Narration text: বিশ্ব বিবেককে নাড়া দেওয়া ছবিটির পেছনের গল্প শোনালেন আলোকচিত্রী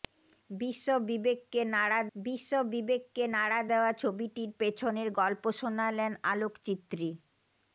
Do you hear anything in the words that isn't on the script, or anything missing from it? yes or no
yes